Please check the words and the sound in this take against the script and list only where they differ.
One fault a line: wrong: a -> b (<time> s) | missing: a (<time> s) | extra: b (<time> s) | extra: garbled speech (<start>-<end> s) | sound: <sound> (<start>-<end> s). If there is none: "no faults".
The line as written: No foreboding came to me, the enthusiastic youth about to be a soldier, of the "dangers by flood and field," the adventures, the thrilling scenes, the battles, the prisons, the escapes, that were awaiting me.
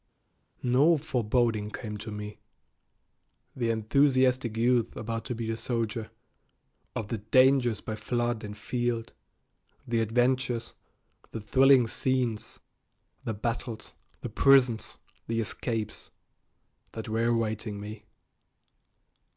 no faults